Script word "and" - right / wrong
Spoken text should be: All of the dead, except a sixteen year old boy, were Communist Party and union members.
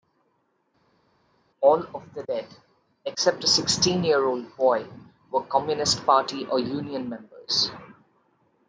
wrong